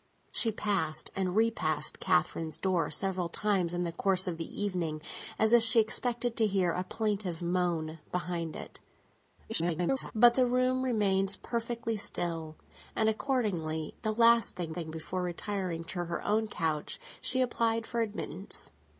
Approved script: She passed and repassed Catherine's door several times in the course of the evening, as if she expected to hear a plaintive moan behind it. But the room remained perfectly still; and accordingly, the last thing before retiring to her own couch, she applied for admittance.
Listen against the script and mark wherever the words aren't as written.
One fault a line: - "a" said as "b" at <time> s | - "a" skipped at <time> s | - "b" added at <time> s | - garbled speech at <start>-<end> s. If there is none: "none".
- garbled speech at 9.5-10.1 s
- "thing" added at 14.7 s